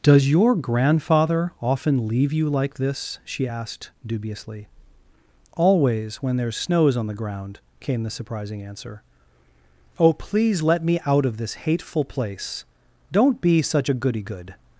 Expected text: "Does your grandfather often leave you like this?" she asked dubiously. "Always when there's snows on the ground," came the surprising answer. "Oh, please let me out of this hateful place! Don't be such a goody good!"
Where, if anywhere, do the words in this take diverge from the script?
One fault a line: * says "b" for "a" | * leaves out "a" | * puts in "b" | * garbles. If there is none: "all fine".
all fine